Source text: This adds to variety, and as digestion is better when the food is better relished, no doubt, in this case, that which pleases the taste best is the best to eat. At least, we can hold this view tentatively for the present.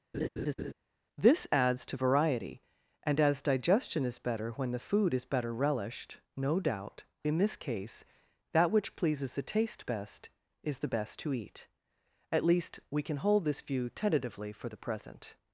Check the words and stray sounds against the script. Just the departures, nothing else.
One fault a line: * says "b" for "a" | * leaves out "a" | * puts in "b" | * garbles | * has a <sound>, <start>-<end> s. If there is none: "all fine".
* has a laugh, 0.1-0.7 s